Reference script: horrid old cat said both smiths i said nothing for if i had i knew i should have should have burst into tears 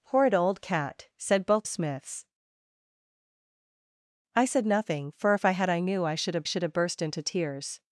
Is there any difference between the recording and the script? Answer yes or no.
no